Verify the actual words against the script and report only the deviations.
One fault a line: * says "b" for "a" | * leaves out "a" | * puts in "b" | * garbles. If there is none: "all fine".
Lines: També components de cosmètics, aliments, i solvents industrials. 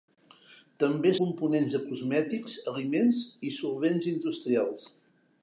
all fine